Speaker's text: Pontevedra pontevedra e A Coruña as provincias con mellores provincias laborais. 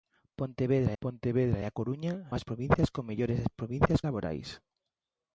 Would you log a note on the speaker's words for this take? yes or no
no